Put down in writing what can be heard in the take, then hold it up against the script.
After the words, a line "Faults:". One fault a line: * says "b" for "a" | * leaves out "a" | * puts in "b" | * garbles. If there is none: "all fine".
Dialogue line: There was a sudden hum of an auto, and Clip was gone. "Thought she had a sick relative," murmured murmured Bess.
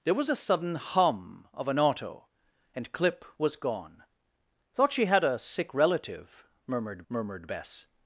There was a sudden hum of an auto, and Clip was gone. "Thought she had a sick relative," murmured murmured Bess.
Faults:
all fine